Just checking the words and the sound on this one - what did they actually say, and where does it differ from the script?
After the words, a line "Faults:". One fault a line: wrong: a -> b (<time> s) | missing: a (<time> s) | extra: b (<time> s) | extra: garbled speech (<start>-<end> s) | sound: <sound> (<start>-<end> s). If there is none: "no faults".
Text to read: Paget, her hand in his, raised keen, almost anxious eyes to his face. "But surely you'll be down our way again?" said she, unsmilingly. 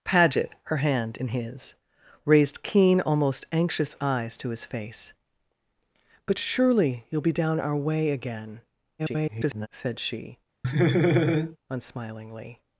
Paget, her hand in his, raised keen, almost anxious eyes to his face. "But surely you'll be down our way again?" [garbled] said she, unsmilingly.
Faults:
extra: garbled speech (9.0-9.7 s)
sound: laugh (10.6-11.6 s)